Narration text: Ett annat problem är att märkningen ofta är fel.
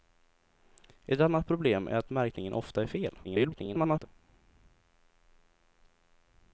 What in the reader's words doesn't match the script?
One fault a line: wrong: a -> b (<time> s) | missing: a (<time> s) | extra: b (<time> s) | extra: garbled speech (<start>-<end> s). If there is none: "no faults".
extra: garbled speech (3.2-4.1 s)